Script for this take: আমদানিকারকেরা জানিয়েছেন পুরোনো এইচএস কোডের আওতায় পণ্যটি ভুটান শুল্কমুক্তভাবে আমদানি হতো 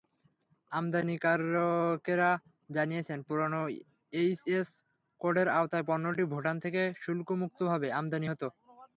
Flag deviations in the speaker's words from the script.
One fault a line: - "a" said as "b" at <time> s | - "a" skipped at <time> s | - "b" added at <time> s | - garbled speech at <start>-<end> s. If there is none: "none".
- "থেকে" added at 6.6 s